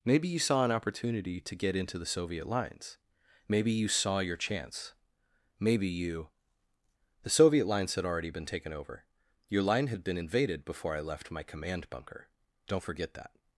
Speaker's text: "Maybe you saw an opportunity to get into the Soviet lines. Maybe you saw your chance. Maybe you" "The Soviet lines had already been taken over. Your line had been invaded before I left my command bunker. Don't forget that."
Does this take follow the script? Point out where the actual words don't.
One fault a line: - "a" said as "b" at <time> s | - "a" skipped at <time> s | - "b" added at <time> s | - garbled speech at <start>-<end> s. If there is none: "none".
none